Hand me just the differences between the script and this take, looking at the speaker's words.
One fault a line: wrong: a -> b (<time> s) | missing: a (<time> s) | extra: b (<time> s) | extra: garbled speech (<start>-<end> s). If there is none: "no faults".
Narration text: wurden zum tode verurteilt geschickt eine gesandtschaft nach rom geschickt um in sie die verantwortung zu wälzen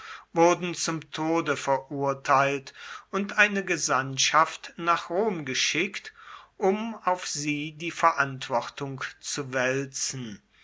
wrong: geschickt -> und (3.1 s)
wrong: in -> auf (7.0 s)